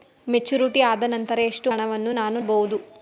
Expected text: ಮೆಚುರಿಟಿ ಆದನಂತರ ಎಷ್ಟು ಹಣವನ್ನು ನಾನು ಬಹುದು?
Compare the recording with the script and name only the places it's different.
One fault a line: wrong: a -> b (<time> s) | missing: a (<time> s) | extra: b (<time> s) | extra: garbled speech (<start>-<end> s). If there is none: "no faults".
no faults